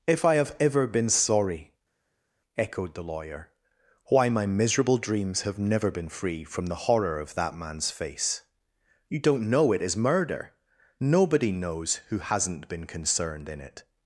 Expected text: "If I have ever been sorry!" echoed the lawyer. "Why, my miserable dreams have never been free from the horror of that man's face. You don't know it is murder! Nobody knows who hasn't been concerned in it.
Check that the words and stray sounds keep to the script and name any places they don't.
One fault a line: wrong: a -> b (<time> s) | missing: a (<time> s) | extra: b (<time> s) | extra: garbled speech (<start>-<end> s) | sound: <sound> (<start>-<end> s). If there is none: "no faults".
no faults